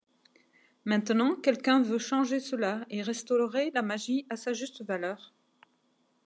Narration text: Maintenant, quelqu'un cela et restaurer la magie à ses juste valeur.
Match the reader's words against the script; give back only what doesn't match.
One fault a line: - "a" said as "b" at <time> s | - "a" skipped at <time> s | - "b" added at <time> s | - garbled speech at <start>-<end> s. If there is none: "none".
- "veut changer" added at 1.8 s
- "ses" said as "sa" at 4.3 s